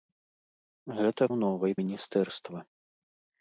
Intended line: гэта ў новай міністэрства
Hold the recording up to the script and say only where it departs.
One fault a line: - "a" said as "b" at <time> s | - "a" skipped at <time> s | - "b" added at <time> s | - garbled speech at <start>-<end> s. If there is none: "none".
none